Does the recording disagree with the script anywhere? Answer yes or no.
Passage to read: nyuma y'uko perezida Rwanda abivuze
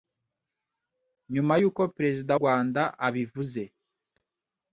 no